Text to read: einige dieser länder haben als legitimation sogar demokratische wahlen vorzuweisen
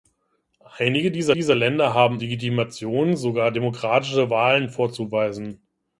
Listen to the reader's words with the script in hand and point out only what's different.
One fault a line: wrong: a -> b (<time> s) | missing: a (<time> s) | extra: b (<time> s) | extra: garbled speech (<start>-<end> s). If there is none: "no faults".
extra: dieser (1.3 s)
missing: als (2.2 s)